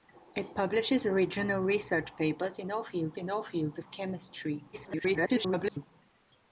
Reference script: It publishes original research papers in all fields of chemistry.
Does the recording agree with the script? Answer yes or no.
no